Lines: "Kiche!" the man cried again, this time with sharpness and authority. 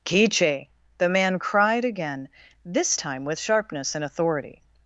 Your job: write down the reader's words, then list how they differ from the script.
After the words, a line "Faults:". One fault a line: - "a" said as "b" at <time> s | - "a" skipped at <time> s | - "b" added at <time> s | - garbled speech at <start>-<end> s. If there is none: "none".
"Kiche!" the man cried again, this time with sharpness and authority.
Faults:
none